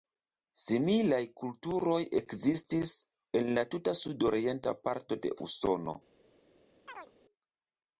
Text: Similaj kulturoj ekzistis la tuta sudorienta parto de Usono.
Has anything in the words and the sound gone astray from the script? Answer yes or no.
yes